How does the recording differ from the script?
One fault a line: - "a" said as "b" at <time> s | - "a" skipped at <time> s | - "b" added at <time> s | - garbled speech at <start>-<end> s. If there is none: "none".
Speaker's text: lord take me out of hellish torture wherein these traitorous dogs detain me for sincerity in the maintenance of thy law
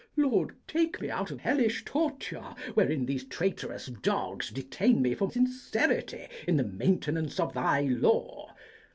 none